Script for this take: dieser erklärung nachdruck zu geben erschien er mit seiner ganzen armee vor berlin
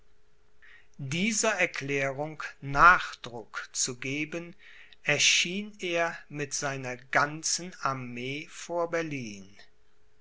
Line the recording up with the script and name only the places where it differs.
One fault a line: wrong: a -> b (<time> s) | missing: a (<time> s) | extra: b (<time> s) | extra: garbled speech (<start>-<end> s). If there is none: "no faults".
no faults